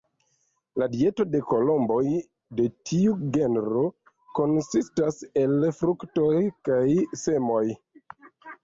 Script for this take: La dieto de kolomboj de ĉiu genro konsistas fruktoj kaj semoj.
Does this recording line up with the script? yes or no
no